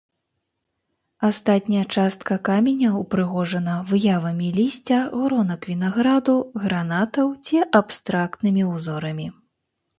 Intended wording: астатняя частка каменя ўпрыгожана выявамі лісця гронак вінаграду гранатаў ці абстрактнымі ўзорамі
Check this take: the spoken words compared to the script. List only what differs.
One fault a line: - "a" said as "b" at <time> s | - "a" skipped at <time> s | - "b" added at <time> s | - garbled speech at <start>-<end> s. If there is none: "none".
none